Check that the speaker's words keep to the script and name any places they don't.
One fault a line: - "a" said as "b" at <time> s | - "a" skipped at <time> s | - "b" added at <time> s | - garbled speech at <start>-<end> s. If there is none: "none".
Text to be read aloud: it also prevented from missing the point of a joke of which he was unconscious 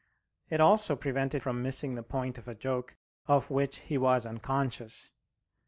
none